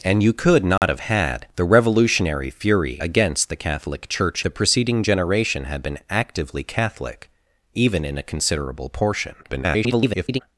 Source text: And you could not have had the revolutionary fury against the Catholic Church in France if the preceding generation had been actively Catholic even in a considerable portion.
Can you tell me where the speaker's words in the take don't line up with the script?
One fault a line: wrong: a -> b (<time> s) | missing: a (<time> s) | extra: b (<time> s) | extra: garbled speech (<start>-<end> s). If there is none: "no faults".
missing: in France if (4.4 s)
extra: garbled speech (9.4-10.4 s)